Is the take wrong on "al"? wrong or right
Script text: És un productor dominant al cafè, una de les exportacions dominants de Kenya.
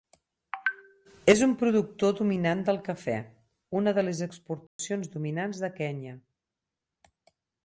wrong